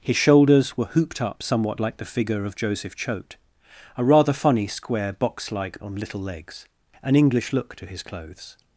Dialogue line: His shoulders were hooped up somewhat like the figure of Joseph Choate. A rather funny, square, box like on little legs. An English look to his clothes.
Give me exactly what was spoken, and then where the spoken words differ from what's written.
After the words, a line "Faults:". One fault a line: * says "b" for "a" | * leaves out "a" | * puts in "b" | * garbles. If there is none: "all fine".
His shoulders were hooped up somewhat like the figure of Joseph Choate. A rather funny, square, box like on little legs. An English look to his clothes.
Faults:
all fine